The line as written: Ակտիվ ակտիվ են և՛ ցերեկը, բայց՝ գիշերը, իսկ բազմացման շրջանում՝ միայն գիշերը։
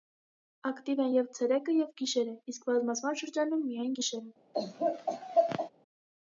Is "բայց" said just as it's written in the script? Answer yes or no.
no